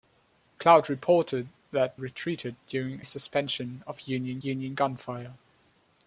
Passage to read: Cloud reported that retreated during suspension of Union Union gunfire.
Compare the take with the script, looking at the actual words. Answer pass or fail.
pass